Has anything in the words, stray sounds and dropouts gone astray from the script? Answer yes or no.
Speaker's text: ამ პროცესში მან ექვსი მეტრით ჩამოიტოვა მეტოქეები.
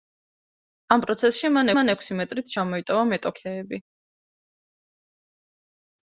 yes